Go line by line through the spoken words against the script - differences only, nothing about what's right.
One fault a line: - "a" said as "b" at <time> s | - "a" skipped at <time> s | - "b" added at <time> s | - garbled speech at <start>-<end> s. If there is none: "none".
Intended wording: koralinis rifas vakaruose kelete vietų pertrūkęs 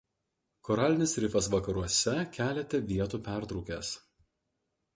none